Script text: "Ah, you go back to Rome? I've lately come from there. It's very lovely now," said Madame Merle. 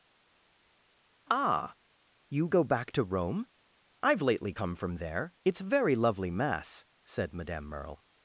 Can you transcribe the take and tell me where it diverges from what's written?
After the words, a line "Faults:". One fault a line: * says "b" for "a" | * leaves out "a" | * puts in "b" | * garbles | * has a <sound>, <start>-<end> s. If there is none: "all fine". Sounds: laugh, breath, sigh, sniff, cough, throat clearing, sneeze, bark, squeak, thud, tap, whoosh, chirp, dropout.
"Ah, you go back to Rome? I've lately come from there. It's very lovely mass," said Madame Merle.
Faults:
* says "mass" for "now"